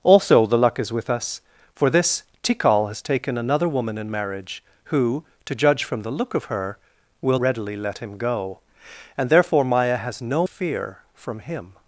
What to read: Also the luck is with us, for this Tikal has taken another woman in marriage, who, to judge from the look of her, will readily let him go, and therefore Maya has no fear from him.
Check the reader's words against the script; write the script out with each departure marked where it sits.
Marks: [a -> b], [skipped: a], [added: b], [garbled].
Also the luck is with us, for this Tikal has taken another woman in marriage, who, to judge from the look of her, will readily let him go, and therefore Maya has no fear from him.